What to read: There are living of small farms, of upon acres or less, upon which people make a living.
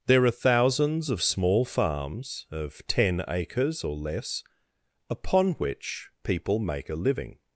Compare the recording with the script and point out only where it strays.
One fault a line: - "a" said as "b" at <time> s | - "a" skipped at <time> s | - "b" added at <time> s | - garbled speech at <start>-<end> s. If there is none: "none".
- "living" said as "thousands" at 0.3 s
- "upon" said as "ten" at 2.9 s